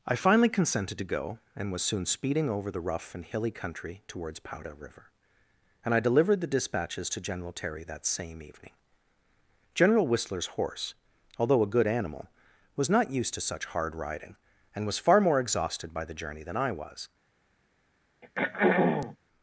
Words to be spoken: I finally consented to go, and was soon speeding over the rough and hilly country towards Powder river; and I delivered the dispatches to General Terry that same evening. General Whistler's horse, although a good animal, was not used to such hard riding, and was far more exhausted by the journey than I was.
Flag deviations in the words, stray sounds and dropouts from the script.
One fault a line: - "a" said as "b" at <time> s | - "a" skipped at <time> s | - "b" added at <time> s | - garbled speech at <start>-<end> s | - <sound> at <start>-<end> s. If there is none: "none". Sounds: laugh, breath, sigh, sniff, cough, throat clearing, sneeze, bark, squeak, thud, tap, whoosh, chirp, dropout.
- throat clearing at 18.2-19.2 s